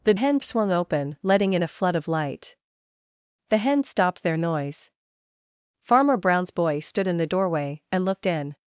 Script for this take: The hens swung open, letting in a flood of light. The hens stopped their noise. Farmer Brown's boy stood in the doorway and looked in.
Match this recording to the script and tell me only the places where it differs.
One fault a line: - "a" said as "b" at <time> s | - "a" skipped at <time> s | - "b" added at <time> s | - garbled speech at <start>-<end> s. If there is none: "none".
none